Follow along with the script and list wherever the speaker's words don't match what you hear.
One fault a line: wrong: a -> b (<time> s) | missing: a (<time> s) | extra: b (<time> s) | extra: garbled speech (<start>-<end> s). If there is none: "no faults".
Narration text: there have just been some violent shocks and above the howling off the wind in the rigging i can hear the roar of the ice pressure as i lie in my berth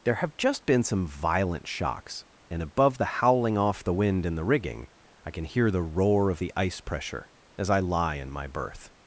no faults